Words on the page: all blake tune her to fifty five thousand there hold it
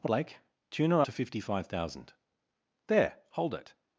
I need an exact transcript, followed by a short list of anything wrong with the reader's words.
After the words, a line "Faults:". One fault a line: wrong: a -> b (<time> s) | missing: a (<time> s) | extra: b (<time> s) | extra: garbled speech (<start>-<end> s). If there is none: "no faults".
all blake tune her to fifty five thousand there hold it
Faults:
no faults